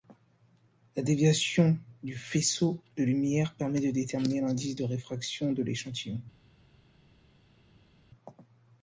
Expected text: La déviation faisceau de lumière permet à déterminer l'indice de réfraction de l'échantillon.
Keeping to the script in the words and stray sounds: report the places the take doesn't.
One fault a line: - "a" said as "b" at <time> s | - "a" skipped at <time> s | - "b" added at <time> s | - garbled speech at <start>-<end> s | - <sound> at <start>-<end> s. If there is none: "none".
- "du" added at 2.0 s
- "à" said as "de" at 3.8 s